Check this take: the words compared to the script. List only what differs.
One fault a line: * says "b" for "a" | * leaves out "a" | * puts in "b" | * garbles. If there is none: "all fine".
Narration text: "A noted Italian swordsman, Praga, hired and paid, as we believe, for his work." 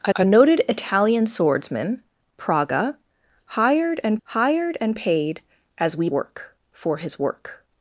* puts in "a"
* puts in "hired and"
* says "work" for "believe"